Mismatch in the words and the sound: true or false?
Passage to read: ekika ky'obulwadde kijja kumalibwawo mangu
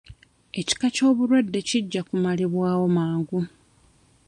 false